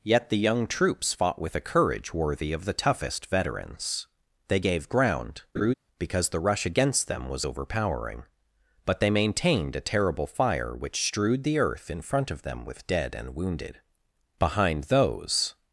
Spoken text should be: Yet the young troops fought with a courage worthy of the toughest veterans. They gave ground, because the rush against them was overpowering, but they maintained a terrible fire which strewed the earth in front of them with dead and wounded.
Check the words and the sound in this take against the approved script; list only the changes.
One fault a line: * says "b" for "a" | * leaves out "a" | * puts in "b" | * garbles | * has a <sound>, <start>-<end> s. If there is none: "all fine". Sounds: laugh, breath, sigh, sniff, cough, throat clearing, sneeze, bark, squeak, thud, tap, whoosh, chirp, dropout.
* has a laugh, 5.5-5.7 s
* puts in "Behind those"